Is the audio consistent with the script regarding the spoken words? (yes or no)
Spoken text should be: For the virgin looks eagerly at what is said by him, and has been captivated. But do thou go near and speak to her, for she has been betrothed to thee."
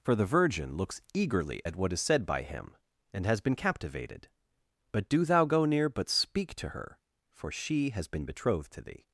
no